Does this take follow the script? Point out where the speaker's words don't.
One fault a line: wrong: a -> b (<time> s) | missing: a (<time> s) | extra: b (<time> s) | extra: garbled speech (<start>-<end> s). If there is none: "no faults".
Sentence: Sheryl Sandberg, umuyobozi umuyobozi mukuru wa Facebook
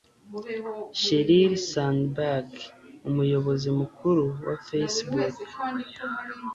missing: umuyobozi (3.7 s)